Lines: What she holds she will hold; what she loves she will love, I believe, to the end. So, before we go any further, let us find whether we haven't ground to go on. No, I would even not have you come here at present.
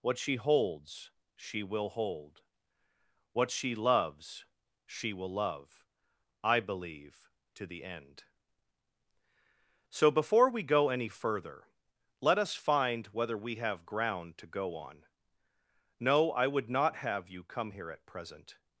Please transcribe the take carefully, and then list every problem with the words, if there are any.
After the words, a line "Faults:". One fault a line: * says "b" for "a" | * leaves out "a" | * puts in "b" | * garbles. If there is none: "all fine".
What she holds she will hold; what she loves she will love, I believe, to the end. So, before we go any further, let us find whether we have ground to go on. No, I would not have you come here at present.
Faults:
* says "have" for "haven't"
* leaves out "even"